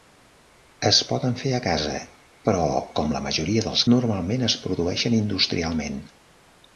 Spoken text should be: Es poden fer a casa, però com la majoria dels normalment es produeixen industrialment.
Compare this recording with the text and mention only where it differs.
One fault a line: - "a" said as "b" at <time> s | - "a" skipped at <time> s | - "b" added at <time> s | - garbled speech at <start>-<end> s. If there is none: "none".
none